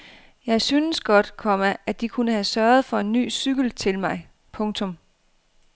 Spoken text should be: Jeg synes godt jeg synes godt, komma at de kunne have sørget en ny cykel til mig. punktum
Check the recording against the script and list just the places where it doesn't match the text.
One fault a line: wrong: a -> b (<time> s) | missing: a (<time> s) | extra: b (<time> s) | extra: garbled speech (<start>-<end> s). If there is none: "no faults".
missing: jeg synes godt (1.4 s)
extra: for (2.9 s)